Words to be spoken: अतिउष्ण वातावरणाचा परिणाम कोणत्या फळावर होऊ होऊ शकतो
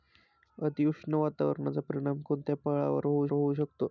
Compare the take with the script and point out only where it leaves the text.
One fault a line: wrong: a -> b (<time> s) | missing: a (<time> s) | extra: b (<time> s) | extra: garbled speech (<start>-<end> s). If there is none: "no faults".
no faults